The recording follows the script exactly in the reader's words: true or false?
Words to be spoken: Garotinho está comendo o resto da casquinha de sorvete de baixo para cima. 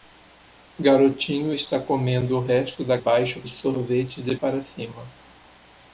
false